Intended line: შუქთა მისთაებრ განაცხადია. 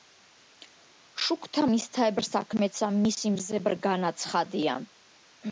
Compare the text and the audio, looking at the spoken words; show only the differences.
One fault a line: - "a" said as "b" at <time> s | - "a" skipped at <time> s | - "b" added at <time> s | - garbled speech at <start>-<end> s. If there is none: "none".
- "საქმეცა მისი მზებრ" added at 2.3 s